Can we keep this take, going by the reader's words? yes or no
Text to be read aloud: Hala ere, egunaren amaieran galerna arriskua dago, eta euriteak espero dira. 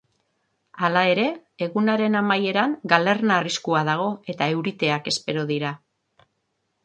yes